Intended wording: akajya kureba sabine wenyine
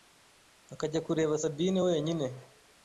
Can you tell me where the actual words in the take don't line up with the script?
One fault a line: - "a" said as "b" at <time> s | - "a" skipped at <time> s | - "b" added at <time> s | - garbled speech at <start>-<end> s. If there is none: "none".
none